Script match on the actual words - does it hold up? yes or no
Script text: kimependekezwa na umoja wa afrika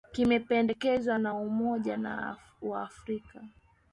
yes